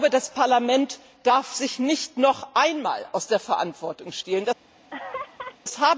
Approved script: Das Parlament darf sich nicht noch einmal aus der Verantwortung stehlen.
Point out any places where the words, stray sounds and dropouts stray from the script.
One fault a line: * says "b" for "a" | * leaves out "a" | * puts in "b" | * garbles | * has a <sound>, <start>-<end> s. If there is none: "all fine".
* has a laugh, 4.9-5.6 s